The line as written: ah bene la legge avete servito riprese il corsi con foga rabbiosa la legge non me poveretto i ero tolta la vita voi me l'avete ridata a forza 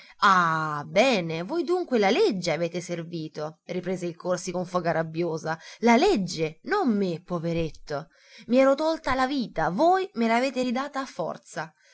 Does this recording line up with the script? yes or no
no